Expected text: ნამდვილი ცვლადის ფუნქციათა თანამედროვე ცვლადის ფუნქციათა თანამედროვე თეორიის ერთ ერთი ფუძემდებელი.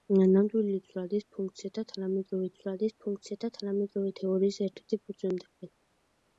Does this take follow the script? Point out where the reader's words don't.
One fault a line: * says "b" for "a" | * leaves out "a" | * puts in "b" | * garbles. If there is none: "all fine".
all fine